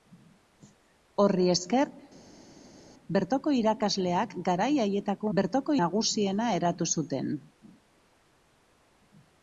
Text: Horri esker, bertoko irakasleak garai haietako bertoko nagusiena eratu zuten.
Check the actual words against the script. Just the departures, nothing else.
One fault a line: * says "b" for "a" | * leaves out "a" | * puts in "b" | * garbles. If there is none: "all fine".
all fine